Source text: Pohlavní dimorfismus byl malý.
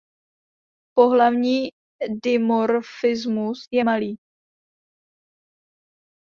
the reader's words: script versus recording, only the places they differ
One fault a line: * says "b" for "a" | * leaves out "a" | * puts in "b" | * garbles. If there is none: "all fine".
* says "je" for "byl"